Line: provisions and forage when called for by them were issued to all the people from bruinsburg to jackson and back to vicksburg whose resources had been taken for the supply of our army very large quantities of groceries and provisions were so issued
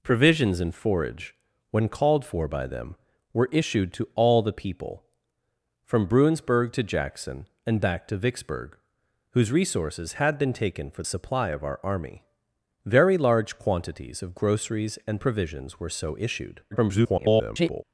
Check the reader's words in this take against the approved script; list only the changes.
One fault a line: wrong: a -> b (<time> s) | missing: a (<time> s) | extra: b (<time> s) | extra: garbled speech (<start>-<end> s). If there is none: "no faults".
missing: the (11.0 s)
extra: garbled speech (16.7-17.8 s)